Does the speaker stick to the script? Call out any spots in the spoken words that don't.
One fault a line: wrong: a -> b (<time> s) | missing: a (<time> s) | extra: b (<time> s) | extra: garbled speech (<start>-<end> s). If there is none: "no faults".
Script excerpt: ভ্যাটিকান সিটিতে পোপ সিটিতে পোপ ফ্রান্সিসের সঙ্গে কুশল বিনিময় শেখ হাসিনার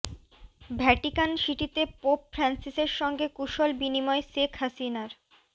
missing: সিটিতে পোপ (2.2 s)